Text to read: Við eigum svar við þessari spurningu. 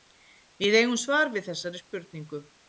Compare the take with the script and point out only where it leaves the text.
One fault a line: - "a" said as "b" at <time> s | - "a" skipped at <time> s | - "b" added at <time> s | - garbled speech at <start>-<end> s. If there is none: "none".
none